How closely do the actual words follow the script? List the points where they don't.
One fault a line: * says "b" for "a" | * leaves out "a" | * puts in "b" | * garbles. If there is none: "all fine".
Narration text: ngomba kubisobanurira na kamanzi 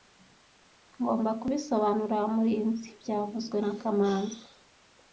* puts in "murinzi byavuzwe"